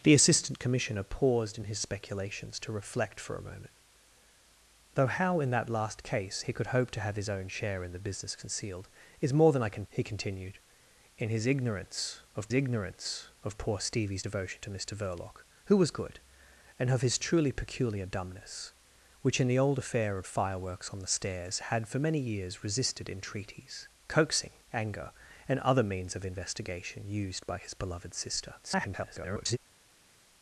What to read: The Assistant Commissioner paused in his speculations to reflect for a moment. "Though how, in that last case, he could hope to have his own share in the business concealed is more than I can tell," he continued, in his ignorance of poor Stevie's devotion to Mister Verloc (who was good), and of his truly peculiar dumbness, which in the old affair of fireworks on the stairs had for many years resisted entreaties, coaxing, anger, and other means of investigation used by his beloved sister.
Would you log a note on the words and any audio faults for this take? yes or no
yes